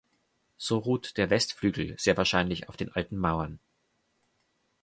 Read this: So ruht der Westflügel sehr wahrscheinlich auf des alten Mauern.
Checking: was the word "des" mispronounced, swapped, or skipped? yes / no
yes